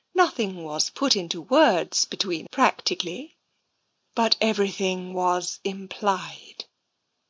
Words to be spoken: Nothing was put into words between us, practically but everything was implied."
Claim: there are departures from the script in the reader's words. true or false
true